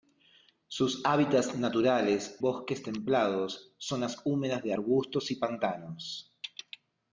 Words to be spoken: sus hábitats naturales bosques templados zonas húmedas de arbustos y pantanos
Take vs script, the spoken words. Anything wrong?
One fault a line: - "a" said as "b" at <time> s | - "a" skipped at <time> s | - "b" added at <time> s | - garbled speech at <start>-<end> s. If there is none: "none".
none